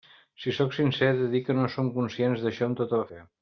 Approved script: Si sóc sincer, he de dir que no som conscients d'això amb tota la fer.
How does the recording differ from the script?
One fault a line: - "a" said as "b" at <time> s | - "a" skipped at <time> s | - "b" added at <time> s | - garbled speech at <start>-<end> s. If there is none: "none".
none